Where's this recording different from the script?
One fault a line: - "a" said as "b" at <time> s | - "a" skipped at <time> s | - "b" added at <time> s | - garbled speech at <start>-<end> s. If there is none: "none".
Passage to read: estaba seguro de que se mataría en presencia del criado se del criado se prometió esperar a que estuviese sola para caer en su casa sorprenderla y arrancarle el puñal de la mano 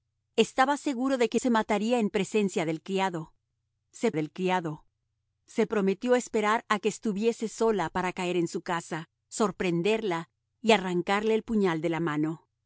none